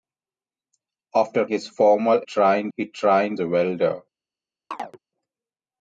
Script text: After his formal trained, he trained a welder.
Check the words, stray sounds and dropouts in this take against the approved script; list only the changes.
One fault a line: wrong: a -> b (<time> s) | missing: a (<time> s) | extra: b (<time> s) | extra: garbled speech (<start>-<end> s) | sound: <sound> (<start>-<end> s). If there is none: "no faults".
sound: chirp (4.7-5.0 s)